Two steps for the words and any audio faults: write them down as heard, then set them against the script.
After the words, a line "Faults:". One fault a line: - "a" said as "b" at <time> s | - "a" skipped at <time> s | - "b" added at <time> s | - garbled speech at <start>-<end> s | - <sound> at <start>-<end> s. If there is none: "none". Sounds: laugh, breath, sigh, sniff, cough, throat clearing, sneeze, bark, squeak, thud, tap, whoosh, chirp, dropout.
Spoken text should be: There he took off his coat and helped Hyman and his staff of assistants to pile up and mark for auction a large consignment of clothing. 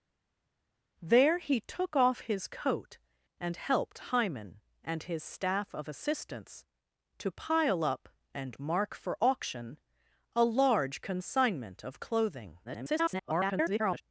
There he took off his coat and helped Hyman and his staff of assistants to pile up and mark for auction a large consignment of clothing. [garbled]
Faults:
- garbled speech at 12.6-14.0 s